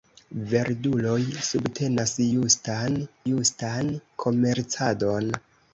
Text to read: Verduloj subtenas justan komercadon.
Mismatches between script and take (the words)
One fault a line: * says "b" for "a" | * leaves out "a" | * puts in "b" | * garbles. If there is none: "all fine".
* puts in "justan"